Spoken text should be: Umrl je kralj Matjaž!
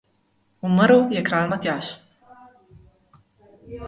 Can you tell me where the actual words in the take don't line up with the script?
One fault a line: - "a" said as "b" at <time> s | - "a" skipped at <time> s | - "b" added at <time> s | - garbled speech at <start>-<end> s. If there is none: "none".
none